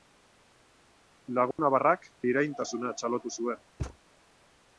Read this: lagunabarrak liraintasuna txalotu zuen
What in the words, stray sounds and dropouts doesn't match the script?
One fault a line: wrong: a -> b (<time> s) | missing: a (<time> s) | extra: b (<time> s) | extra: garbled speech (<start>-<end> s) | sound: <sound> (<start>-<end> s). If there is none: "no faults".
sound: dropout (1.5-1.6 s)
sound: thud (3.8-4.0 s)